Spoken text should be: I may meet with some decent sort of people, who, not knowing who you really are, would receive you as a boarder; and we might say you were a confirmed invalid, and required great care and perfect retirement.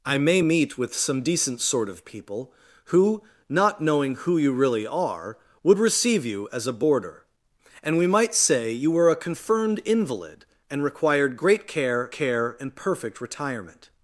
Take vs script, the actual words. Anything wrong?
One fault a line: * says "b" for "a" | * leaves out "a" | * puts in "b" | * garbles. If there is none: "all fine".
* puts in "care"